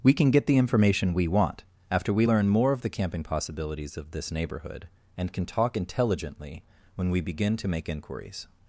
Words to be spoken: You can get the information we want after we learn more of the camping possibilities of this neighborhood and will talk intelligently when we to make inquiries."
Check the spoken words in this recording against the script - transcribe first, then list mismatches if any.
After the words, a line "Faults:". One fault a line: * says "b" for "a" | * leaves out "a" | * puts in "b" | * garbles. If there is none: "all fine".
We can get the information we want after we learn more of the camping possibilities of this neighborhood and can talk intelligently when we begin to make inquiries."
Faults:
* says "We" for "You"
* says "can" for "will"
* puts in "begin"